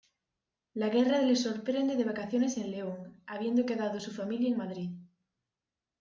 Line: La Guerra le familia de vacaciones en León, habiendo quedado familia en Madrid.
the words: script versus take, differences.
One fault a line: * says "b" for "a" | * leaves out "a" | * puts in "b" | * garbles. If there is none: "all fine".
* says "sorprende" for "familia"
* puts in "su"